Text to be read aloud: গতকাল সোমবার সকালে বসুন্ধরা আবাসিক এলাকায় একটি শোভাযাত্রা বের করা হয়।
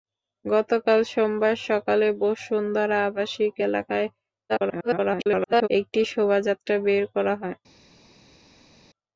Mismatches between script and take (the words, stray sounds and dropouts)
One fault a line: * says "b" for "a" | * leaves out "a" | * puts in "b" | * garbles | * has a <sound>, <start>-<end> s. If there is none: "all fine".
* garbles